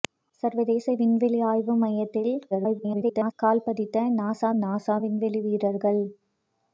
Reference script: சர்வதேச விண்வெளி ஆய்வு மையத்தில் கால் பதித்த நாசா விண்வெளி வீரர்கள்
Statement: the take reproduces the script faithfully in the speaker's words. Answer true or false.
false